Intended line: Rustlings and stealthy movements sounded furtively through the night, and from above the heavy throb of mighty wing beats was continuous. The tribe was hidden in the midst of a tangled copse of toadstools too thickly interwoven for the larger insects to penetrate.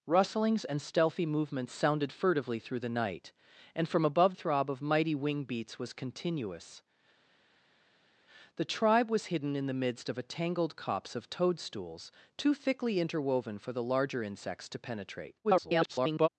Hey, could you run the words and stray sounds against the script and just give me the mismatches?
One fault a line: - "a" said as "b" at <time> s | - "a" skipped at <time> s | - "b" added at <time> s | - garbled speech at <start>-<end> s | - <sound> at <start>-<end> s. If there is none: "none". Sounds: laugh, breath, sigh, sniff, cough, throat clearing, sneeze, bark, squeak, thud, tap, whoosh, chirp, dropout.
- "the heavy" skipped at 4.3 s
- garbled speech at 15.4-16.3 s